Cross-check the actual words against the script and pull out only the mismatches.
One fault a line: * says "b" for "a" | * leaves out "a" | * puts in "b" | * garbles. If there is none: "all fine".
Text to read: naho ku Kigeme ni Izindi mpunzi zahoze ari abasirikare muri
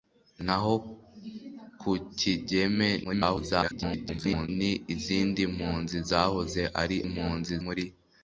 * garbles
* says "mpunzi" for "abasirikare"